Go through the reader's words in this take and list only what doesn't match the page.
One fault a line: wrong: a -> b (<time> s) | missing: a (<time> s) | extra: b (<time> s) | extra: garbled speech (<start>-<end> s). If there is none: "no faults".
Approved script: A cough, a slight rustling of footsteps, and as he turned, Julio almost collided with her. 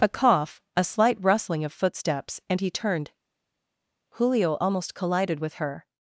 missing: as (2.6 s)